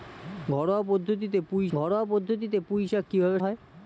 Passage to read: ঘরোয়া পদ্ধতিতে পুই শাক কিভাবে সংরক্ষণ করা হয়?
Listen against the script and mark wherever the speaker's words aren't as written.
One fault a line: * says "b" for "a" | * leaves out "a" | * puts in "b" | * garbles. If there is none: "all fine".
* puts in "ঘরোয়া পদ্ধতিতে পুই"
* leaves out "সংরক্ষণ করা"